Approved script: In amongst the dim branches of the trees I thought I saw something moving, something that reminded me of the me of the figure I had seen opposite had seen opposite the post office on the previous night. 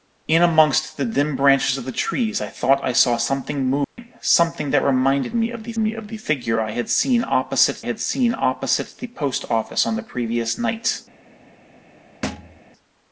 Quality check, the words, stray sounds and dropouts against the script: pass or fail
fail